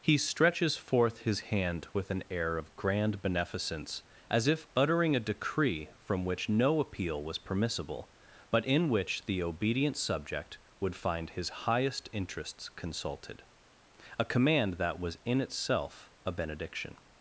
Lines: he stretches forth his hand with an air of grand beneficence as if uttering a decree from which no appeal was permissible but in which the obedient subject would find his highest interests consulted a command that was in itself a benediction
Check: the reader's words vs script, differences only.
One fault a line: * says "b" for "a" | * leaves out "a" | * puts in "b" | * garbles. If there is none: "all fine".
all fine